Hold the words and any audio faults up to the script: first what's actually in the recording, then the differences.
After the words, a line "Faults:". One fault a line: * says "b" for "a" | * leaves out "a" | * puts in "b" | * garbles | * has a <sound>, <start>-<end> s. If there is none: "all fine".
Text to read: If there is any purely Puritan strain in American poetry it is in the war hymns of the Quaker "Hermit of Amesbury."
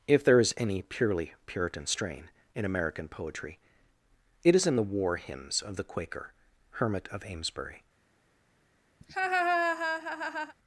If there is any purely Puritan strain in American poetry it is in the war hymns of the Quaker "Hermit of Amesbury."
Faults:
* has a laugh, 9.0-10.5 s